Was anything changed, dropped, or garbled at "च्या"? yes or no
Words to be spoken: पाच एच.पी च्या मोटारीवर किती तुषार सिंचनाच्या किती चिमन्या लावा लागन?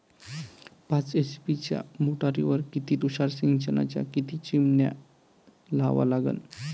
no